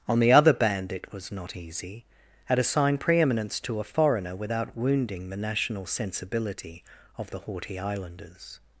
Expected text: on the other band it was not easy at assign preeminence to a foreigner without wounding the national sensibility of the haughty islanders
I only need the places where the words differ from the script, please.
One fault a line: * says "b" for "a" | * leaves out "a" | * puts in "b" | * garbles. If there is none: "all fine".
all fine